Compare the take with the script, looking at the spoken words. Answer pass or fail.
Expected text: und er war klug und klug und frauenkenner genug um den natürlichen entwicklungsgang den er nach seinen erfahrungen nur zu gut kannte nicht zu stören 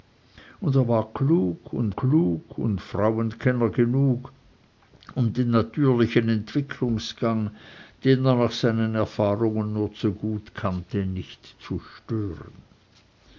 pass